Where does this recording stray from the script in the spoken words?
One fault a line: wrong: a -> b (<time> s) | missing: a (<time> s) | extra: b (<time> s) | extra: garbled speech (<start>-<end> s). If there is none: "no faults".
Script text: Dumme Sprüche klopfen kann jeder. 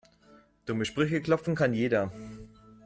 no faults